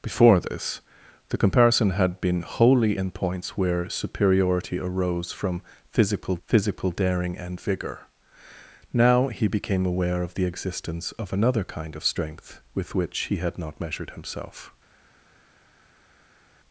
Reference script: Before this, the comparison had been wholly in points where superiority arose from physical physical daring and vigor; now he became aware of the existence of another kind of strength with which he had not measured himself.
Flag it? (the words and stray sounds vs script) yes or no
no